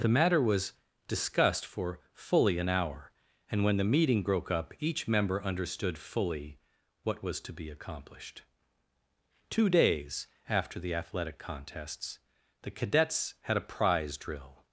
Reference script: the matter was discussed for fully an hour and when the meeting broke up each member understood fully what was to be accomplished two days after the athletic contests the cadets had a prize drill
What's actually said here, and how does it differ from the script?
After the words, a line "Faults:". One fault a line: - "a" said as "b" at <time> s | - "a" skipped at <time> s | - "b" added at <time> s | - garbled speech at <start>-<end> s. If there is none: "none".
the matter was discussed for fully an hour and when the meeting broke up each member understood fully what was to be accomplished two days after the athletic contests the cadets had a prize drill
Faults:
none